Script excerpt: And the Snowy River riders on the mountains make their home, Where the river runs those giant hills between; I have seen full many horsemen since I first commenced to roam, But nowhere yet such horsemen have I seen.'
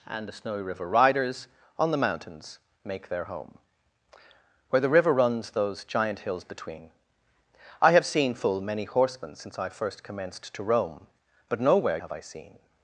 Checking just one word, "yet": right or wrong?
wrong